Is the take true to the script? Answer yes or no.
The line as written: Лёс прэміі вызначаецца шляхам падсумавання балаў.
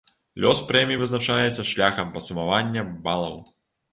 yes